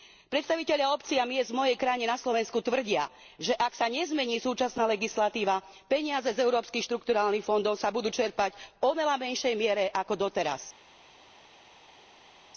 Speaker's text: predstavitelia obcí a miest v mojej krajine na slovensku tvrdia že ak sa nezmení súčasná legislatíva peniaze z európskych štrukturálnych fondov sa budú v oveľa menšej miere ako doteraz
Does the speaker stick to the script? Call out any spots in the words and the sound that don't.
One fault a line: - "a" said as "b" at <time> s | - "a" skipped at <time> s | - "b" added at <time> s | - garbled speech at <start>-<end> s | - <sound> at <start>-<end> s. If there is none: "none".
- "čerpať" added at 8.1 s